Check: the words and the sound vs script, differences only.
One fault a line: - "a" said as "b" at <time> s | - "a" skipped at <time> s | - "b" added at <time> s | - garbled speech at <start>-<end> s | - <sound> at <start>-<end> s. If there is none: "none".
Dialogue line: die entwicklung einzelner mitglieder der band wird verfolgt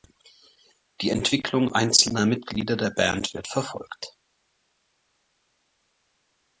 none